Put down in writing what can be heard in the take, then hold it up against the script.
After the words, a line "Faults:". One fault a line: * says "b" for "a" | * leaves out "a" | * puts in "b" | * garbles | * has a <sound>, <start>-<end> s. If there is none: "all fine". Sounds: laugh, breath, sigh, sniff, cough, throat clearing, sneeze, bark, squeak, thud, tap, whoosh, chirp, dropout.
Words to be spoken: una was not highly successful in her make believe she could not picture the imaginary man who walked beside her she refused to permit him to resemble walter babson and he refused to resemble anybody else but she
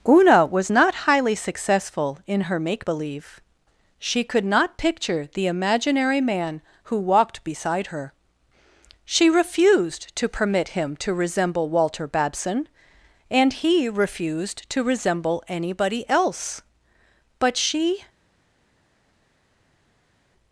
una was not highly successful in her make believe she could not picture the imaginary man who walked beside her she refused to permit him to resemble walter babson and he refused to resemble anybody else but she
Faults:
all fine